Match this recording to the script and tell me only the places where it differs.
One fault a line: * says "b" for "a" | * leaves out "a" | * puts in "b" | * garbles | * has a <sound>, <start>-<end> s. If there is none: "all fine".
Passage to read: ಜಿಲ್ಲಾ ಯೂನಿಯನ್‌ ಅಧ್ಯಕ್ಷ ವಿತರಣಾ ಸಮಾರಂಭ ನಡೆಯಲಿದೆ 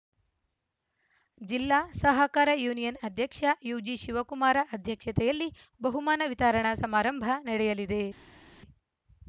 * puts in "ಸಹಕಾರ"
* puts in "ಯುಜಿಶಿವಕುಮಾರ ಅಧ್ಯಕ್ಷತೆಯಲ್ಲಿ ಬಹುಮಾನ"